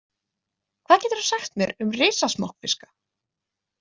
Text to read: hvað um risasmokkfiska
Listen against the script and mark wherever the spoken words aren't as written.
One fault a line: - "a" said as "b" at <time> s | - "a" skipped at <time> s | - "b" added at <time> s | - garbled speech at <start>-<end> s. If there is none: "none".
- "geturðu sagt mér" added at 1.0 s